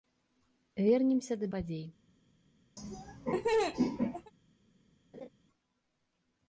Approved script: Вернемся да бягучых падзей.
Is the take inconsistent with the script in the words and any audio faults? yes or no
yes